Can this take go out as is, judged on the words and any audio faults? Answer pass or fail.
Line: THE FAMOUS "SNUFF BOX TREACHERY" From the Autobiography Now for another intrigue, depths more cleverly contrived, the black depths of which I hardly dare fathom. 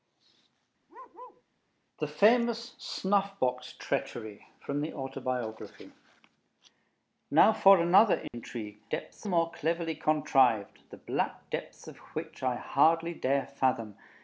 fail